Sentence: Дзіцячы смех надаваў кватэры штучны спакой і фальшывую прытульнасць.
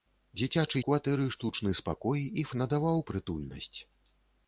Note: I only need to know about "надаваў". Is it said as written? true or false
false